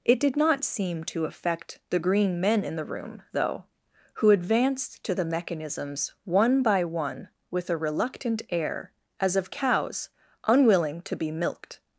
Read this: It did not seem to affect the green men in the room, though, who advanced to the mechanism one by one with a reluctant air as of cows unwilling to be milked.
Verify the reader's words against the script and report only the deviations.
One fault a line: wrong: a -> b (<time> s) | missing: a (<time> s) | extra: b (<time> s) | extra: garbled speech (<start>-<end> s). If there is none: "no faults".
wrong: mechanism -> mechanisms (5.3 s)